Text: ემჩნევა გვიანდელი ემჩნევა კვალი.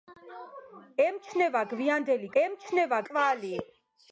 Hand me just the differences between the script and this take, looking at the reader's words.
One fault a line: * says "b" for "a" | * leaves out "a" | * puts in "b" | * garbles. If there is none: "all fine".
all fine